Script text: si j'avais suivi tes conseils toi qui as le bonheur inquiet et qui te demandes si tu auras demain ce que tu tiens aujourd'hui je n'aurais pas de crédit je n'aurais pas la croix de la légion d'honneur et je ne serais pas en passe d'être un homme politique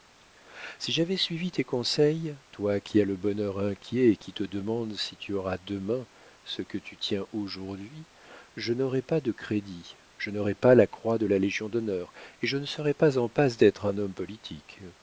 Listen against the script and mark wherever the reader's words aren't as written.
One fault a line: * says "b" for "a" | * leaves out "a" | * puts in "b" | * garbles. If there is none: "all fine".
all fine